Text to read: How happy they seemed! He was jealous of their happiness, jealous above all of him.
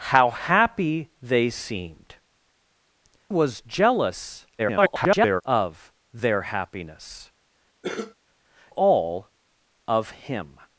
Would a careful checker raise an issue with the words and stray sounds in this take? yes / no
yes